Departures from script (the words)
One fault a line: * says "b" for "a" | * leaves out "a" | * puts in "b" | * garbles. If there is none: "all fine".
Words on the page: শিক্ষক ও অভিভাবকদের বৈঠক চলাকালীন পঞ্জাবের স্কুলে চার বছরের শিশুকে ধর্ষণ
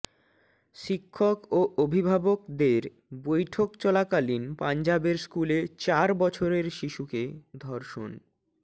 all fine